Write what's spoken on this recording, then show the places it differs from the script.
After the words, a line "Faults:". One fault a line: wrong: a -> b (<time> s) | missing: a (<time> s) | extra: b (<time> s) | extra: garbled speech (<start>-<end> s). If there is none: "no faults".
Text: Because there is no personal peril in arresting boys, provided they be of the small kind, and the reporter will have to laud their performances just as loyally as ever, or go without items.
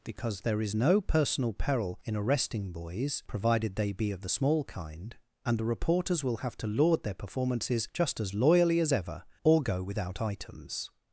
Because there is no personal peril in arresting boys, provided they be of the small kind, and the reporters will have to laud their performances just as loyally as ever, or go without items.
Faults:
wrong: reporter -> reporters (5.6 s)